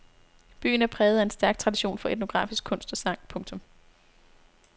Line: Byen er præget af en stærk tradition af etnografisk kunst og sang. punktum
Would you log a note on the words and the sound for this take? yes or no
yes